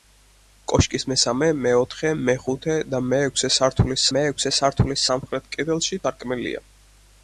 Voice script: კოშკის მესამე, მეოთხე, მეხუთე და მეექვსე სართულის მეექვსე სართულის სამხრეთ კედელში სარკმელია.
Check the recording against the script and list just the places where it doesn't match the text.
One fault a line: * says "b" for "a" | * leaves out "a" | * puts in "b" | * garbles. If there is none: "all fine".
all fine